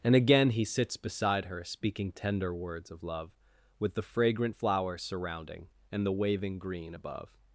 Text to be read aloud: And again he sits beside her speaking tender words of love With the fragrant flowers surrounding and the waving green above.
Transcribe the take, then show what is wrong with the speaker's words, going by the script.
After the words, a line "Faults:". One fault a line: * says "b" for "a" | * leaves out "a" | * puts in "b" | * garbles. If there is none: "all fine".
And again he sits beside her speaking tender words of love With the fragrant flowers surrounding and the waving green above.
Faults:
all fine